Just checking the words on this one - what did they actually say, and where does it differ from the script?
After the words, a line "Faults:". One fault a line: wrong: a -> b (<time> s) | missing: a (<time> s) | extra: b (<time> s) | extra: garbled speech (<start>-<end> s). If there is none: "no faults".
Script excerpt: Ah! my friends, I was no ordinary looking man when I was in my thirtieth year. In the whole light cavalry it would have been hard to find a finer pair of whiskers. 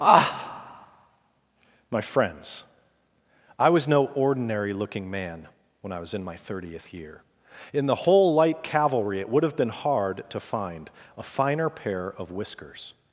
Ah! my friends, I was no ordinary looking man when I was in my thirtieth year. In the whole light cavalry it would have been hard to find a finer pair of whiskers.
Faults:
no faults